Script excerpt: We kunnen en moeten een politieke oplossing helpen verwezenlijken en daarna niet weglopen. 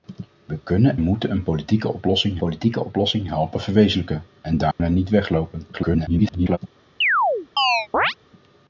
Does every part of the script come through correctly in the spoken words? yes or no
no